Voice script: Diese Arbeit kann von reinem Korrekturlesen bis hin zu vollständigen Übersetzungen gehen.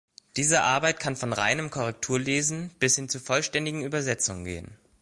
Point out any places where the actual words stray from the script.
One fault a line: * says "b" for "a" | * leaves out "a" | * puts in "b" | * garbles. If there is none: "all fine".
all fine